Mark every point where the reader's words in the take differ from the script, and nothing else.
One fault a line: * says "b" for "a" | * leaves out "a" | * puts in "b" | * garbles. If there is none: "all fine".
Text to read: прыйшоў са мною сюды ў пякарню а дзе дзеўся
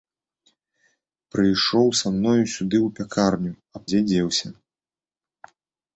all fine